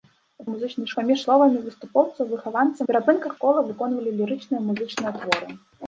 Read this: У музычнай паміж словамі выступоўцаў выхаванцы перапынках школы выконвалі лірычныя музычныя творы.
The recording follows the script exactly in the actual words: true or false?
true